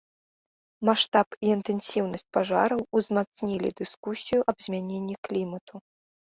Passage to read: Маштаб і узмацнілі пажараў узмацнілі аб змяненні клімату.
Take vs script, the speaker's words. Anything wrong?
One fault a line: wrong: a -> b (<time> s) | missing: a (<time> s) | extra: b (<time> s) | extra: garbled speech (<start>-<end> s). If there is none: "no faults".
wrong: узмацнілі -> інтэнсіўнасць (1.6 s)
extra: дыскусію (3.8 s)